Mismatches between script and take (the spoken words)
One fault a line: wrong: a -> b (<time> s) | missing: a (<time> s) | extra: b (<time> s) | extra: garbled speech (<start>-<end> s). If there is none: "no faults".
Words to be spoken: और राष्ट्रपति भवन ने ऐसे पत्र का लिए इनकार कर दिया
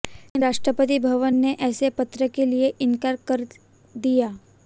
wrong: और -> लेकिन (0.1 s)
wrong: का -> के (2.3 s)